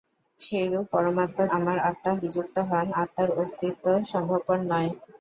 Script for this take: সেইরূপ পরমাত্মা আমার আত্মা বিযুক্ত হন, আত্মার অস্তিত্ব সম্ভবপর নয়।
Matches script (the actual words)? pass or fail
pass